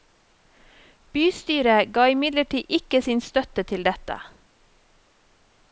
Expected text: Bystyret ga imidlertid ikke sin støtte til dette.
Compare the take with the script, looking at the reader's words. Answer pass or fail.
pass